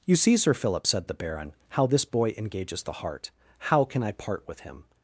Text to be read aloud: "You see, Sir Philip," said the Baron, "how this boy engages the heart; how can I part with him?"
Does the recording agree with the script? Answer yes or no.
yes